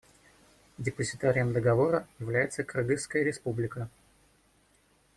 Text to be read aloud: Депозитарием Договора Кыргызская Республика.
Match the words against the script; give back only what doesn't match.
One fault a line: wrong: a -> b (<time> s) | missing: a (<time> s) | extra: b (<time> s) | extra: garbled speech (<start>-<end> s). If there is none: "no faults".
extra: является (2.2 s)